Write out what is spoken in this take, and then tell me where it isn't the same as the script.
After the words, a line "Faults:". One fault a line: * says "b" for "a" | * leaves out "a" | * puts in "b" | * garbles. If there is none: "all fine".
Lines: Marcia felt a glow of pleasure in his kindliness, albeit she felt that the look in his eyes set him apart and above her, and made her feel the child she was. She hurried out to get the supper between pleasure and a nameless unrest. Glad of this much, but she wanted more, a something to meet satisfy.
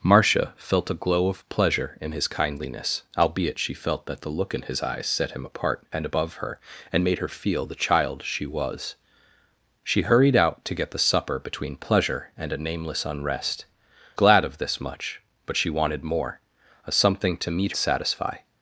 Marcia felt a glow of pleasure in his kindliness, albeit she felt that the look in his eyes set him apart and above her, and made her feel the child she was. She hurried out to get the supper between pleasure and a nameless unrest. Glad of this much, but she wanted more, a something to meet satisfy.
Faults:
all fine